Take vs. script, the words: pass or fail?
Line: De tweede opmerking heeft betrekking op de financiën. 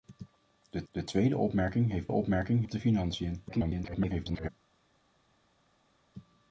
fail